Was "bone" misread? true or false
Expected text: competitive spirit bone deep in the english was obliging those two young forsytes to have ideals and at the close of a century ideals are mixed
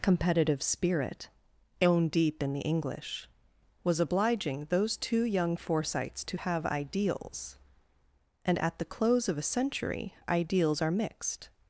true